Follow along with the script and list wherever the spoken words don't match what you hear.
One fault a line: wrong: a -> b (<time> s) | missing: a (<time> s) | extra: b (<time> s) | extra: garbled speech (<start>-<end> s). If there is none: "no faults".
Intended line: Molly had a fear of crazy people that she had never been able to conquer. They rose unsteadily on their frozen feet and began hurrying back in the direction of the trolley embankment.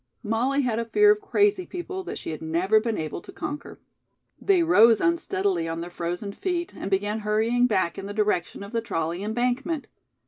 no faults